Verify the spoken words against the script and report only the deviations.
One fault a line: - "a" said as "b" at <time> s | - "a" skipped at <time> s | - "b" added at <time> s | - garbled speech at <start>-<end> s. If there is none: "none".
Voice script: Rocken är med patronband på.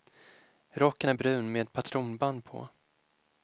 - "brun" added at 1.1 s